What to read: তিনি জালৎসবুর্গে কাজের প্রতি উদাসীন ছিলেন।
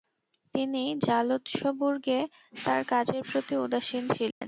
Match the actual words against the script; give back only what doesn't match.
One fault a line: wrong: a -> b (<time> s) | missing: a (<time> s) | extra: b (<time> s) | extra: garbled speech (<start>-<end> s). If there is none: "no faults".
extra: তার (2.6 s)